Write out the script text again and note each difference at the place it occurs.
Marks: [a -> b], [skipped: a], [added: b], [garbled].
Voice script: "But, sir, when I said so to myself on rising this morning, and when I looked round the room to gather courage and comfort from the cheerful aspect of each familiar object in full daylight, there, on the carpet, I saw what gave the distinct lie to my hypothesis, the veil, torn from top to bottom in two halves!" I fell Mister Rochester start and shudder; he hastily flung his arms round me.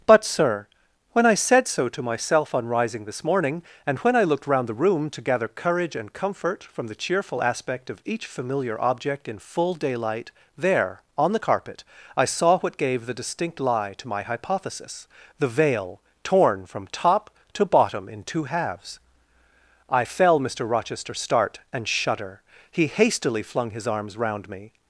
"But, sir, when I said so to myself on rising this morning, and when I looked round the room to gather courage and comfort from the cheerful aspect of each familiar object in full daylight, there, on the carpet, I saw what gave the distinct lie to my hypothesis, the veil, torn from top to bottom in two halves!" I fell Mister Rochester start and shudder; he hastily flung his arms round me.